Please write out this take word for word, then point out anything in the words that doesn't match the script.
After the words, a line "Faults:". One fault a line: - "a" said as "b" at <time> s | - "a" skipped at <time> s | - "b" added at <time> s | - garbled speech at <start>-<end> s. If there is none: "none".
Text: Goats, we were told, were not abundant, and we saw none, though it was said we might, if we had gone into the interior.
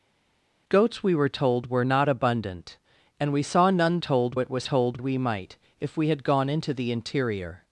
Goats, we were told, were not abundant, and we saw none, told it was told we might, if we had gone into the interior.
Faults:
- "though" said as "told" at 4.0 s
- "said" said as "told" at 4.6 s